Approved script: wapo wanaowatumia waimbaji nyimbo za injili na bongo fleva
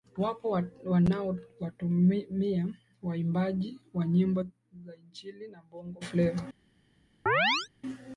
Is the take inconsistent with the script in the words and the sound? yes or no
yes